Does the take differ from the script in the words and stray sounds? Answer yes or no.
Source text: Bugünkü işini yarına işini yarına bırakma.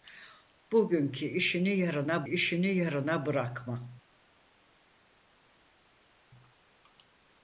no